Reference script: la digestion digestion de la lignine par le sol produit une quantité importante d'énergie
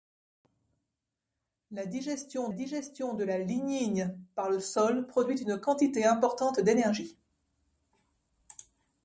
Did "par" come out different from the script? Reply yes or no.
no